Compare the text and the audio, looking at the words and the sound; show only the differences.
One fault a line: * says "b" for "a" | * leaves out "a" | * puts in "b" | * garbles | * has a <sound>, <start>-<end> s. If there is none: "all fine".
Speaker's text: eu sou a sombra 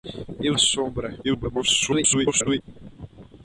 * leaves out "sou"
* garbles